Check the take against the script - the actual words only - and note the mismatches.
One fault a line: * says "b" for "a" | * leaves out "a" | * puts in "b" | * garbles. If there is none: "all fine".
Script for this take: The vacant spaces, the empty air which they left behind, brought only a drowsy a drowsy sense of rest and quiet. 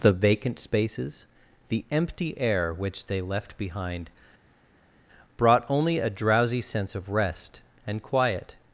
* leaves out "a drowsy"